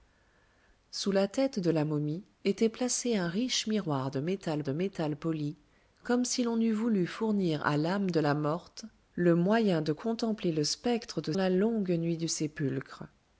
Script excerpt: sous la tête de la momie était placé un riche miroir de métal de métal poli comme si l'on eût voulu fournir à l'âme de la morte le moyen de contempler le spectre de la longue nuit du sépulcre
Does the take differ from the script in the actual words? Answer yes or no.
no